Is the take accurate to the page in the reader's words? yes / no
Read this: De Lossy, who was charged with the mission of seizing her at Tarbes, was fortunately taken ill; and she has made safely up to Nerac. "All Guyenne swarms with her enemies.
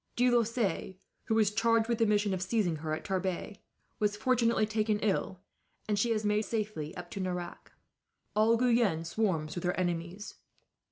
yes